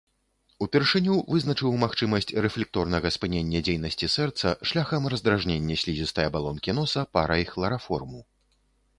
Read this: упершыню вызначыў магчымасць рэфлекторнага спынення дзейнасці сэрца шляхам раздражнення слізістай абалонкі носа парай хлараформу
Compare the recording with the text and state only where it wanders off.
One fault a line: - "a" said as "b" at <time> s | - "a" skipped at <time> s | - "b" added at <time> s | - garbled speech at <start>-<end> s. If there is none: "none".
none